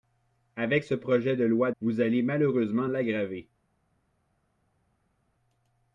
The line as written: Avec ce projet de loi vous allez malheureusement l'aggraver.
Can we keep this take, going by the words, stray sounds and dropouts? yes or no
yes